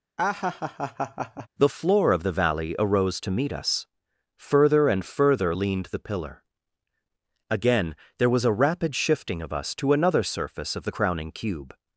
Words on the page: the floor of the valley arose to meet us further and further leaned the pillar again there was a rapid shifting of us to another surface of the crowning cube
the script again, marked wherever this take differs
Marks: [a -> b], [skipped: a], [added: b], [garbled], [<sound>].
[laugh] the floor of the valley arose to meet us further and further leaned the pillar again there was a rapid shifting of us to another surface of the crowning cube